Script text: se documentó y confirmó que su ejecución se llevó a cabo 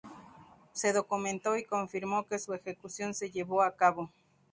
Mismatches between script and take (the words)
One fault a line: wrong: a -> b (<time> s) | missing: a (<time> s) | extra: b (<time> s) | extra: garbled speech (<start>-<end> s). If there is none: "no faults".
no faults